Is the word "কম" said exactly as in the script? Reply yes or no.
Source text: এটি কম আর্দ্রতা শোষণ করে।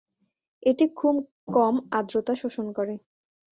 yes